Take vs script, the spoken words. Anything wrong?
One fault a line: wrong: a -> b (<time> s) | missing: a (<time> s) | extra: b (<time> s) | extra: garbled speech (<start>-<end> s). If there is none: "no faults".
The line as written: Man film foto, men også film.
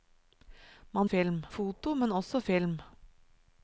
no faults